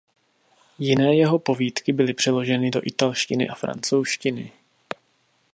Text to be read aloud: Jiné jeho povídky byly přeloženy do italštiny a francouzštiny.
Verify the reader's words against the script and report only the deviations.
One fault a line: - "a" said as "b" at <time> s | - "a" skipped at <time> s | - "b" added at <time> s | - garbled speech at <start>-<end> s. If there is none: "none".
none